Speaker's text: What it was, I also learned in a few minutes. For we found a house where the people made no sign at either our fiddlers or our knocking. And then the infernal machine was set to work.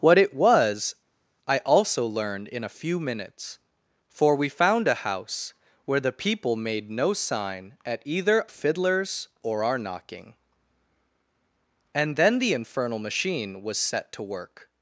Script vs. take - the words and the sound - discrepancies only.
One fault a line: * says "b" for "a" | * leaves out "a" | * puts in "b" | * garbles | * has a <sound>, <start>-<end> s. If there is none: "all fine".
* leaves out "our"